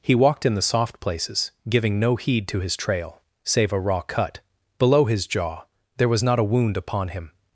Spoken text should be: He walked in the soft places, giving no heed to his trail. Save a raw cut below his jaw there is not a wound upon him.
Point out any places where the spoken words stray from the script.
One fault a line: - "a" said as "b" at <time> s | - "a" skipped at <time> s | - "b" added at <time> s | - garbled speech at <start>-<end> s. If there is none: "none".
- "is" said as "was" at 6.1 s